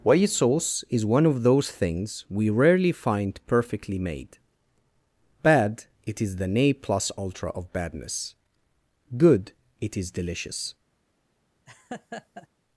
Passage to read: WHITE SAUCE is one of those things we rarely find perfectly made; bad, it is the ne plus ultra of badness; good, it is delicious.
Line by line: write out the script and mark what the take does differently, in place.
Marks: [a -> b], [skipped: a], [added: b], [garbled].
WHITE SAUCE is one of those things we rarely find perfectly made; bad, it is the ne plus ultra of badness; good, it is delicious.